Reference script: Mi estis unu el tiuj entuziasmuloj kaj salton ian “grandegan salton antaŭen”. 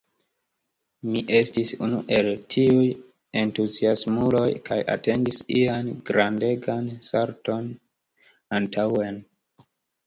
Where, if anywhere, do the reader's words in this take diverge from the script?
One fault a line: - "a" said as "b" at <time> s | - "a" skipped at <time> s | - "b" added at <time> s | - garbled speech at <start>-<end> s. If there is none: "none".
- "salton" said as "atendis" at 5.0 s